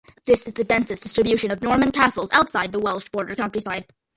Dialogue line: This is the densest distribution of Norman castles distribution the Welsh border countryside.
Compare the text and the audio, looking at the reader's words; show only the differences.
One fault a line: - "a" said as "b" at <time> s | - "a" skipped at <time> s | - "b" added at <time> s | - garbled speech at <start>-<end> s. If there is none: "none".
- "distribution" said as "outside" at 2.3 s